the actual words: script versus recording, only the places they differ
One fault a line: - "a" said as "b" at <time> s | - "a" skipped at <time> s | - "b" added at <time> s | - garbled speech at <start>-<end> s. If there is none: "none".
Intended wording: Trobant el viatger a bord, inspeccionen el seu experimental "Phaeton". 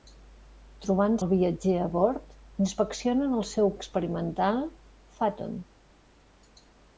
none